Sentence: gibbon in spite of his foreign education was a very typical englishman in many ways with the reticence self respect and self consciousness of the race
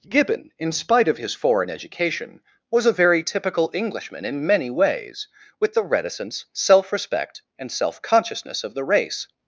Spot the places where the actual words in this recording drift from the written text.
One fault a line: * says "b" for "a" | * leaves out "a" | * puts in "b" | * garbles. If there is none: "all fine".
all fine